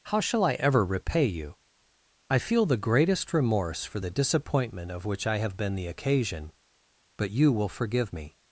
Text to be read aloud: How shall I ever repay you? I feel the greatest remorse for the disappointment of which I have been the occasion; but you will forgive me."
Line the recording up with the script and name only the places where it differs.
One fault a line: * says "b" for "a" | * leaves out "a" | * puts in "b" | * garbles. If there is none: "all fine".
all fine